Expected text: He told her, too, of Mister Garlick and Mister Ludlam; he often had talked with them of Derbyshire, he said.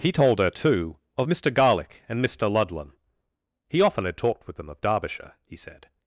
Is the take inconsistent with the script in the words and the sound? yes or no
no